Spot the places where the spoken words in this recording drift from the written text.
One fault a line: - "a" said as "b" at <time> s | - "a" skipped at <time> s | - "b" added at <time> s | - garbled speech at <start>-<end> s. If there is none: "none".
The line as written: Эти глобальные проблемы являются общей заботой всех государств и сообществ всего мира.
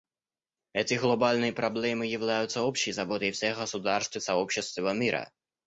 none